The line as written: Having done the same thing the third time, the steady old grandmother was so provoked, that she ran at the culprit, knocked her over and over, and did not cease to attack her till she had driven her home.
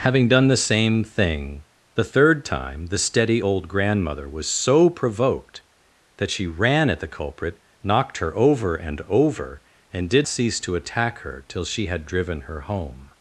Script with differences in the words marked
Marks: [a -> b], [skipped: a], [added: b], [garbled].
Having done the same thing the third time, the steady old grandmother was so provoked, that she ran at the culprit, knocked her over and over, and did [skipped: not] cease to attack her till she had driven her home.